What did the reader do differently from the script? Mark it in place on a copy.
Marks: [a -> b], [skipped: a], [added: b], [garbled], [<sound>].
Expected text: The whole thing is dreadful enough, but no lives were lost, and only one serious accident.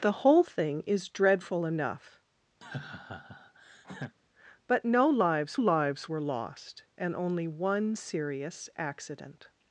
The whole thing is dreadful enough, [laugh] but no lives [added: lives] were lost, and only one serious accident.